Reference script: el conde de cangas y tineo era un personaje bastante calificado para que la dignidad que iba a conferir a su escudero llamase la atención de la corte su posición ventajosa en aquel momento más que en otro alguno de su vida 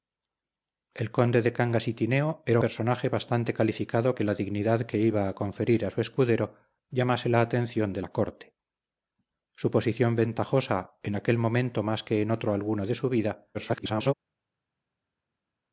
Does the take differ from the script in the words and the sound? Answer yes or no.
yes